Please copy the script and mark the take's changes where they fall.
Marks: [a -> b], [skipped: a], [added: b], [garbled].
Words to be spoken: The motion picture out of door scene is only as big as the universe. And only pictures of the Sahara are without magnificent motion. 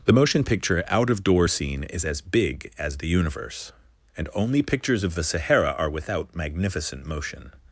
The motion picture out of door scene is [skipped: only] as big as the universe. And only pictures of the Sahara are without magnificent motion.